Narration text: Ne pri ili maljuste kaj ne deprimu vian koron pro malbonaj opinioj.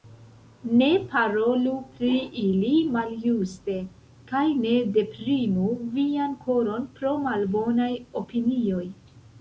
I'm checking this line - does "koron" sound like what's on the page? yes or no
yes